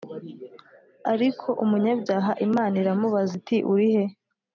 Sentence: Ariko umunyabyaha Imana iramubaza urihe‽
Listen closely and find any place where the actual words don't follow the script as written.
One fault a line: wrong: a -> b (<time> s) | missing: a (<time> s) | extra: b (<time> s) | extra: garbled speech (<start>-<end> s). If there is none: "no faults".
extra: iti (3.4 s)